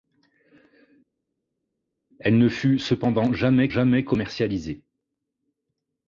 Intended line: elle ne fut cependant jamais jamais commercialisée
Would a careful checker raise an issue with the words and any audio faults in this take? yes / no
no